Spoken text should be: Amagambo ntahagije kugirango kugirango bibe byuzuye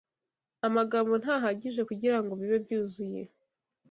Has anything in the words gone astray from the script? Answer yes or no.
yes